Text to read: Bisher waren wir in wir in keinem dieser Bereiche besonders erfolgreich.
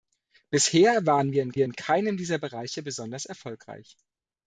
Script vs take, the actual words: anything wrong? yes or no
no